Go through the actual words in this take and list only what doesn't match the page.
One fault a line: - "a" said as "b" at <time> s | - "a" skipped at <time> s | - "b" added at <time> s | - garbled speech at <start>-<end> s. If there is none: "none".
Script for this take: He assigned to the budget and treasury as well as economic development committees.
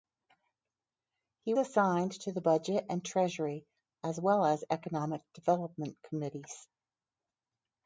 none